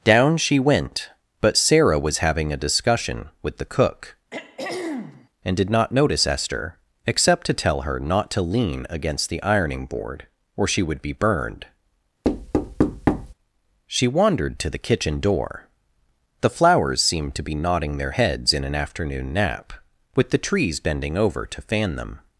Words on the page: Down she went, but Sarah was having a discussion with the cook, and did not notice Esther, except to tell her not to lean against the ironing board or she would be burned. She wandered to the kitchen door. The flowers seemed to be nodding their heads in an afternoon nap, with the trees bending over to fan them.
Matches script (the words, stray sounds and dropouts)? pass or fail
fail